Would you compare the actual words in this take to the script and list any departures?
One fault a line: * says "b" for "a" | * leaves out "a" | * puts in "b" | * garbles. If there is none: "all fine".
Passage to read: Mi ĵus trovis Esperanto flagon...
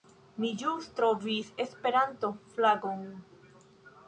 all fine